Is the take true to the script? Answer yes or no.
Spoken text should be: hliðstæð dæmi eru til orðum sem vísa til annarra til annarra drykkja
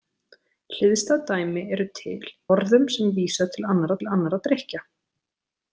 yes